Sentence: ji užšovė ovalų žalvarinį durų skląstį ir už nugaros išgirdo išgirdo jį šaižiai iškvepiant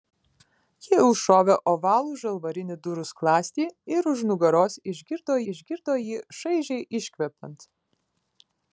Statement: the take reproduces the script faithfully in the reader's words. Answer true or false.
true